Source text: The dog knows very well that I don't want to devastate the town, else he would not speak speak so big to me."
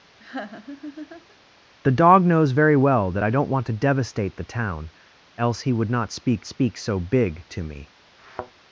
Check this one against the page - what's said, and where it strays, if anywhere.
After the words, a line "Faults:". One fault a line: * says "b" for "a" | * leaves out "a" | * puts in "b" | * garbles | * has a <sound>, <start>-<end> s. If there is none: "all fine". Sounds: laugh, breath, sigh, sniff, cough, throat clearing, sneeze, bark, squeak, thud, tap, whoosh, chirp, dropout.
The dog knows very well that I don't want to devastate the town, else he would not speak speak so big to me."
Faults:
* has a laugh, 0.2-1.4 s
* has a thud, 8.2-8.5 s